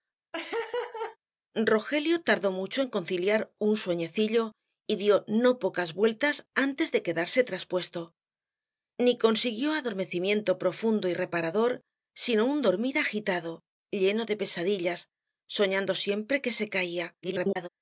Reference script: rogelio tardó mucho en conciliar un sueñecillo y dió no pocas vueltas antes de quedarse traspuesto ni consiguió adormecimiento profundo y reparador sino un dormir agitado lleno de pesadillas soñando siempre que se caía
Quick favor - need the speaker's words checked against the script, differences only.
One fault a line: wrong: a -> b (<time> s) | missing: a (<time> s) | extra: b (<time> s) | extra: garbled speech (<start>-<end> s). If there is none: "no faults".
extra: garbled speech (17.2-17.7 s)